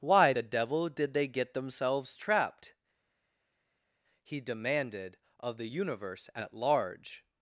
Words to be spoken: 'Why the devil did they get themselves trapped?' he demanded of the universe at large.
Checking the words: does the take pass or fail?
pass